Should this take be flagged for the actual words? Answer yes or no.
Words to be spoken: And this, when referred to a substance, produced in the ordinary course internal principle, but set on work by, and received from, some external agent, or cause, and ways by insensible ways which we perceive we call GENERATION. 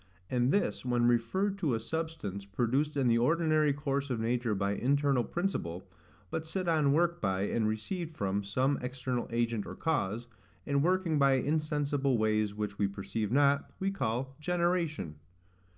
yes